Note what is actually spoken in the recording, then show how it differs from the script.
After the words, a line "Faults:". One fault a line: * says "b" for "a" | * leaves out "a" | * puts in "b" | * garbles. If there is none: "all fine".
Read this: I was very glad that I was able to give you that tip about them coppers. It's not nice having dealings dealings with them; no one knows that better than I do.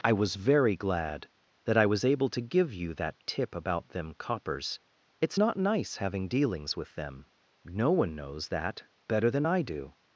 I was very glad that I was able to give you that tip about them coppers. It's not nice having dealings with them; no one knows that better than I do.
Faults:
* leaves out "dealings"